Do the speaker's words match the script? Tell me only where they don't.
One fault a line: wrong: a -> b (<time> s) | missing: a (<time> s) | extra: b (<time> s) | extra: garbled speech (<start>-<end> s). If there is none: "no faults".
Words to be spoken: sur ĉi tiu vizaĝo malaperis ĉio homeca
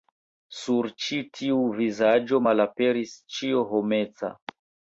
no faults